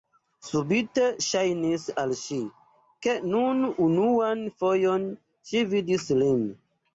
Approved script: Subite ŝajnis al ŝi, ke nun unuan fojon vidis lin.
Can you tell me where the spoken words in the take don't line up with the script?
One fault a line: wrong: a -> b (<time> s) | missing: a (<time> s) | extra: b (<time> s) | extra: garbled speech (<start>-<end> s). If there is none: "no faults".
extra: ŝi (5.5 s)